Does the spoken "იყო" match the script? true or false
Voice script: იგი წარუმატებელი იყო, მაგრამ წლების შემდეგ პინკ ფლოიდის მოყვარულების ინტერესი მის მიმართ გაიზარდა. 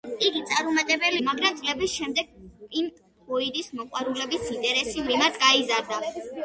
false